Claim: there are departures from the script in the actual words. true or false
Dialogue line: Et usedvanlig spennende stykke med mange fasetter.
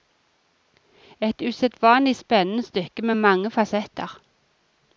false